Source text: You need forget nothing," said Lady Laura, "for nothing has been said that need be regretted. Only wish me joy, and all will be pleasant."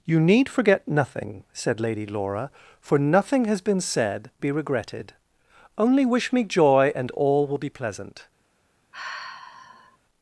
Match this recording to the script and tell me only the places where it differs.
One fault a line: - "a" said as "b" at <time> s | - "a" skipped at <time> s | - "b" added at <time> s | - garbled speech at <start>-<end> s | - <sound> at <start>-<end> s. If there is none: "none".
- "that need" skipped at 4.3 s
- sigh at 8.9-10.0 s